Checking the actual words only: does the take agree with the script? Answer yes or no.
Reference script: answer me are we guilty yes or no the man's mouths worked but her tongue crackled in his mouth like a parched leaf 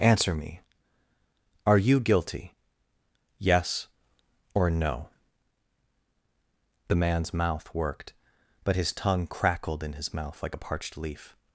no